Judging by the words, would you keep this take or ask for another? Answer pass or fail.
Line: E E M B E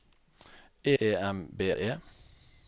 pass